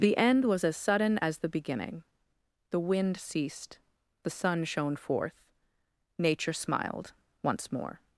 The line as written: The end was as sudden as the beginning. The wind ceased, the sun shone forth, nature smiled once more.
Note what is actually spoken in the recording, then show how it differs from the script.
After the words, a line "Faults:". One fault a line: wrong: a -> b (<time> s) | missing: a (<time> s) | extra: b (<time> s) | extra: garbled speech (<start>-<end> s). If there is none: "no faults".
The end was as sudden as the beginning. The wind ceased, the sun shone forth, nature smiled once more.
Faults:
no faults